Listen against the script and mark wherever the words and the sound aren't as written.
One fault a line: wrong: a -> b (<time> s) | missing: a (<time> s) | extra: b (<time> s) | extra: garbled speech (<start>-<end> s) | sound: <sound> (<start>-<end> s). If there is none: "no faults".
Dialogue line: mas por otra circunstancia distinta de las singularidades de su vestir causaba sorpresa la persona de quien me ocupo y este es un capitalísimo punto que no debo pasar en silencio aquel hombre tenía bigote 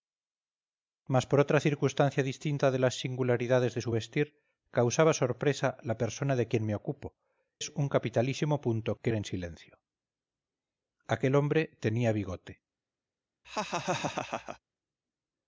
missing: y este (7.2 s)
missing: no debo pasar (9.1 s)
sound: laugh (13.4-14.6 s)